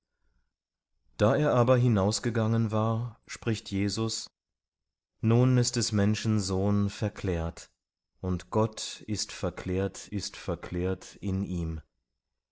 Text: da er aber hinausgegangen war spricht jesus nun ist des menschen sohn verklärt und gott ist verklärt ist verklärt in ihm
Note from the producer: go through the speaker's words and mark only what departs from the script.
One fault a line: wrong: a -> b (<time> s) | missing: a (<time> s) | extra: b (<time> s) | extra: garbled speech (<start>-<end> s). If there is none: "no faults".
no faults